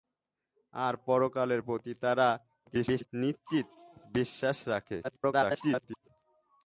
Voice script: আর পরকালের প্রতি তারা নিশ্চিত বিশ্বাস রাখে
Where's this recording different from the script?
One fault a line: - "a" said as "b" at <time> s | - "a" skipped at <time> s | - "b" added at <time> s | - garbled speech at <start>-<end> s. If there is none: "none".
- garbled speech at 2.7-3.1 s
- garbled speech at 5.0-6.1 s